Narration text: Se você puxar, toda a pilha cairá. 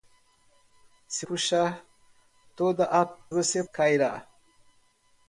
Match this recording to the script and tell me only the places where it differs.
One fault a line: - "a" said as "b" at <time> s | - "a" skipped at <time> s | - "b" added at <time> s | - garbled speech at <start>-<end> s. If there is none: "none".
- "você" skipped at 1.3 s
- "pilha" said as "você" at 3.3 s